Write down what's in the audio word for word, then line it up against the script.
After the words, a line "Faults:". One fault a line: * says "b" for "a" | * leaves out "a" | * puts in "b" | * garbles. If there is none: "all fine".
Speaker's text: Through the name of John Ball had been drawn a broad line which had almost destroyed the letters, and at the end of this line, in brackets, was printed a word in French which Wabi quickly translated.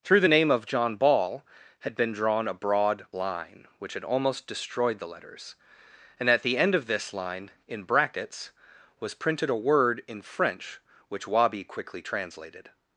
Through the name of John Ball had been drawn a broad line which had almost destroyed the letters, and at the end of this line, in brackets, was printed a word in French which Wabi quickly translated.
Faults:
all fine